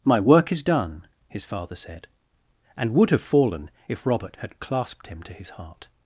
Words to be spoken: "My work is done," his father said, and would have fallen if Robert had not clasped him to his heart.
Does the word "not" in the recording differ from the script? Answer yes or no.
yes